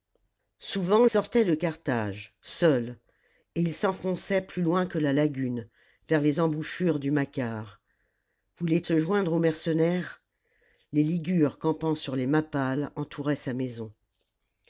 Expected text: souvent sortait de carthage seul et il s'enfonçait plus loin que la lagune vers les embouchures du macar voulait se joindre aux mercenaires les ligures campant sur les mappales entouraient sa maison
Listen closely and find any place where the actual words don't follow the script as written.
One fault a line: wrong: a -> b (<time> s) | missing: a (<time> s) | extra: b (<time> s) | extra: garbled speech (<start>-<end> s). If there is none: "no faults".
no faults